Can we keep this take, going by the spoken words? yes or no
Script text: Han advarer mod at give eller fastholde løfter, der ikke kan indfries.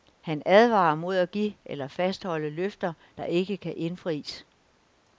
yes